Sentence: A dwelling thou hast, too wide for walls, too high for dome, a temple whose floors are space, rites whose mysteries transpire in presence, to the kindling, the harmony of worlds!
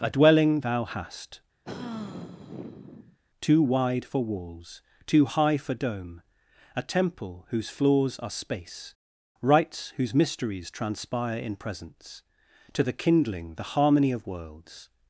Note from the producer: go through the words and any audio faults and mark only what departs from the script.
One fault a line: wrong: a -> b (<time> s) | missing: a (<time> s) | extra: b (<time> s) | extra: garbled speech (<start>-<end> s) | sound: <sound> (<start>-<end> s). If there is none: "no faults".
sound: sigh (1.6-3.2 s)